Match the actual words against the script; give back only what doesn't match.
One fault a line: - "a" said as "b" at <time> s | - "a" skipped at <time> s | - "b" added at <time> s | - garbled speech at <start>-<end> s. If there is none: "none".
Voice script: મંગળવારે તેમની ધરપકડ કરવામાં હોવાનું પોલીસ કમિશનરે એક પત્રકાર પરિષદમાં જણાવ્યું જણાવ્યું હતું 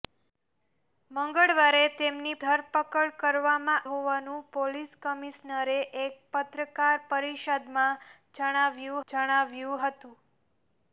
none